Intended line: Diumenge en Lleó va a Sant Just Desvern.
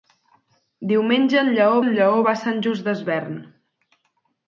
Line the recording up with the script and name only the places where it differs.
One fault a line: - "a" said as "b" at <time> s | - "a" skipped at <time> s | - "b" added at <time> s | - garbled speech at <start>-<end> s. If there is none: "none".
- "en Lleó" added at 1.8 s